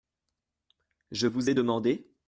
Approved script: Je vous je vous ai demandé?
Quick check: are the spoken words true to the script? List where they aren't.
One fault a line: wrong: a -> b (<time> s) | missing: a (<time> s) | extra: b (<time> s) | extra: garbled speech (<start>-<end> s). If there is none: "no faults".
missing: je vous (1.5 s)